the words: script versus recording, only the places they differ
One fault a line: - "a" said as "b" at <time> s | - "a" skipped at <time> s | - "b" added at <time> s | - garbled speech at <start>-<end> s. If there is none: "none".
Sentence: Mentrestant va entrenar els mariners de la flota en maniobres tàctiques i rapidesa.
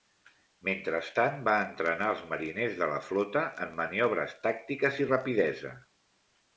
none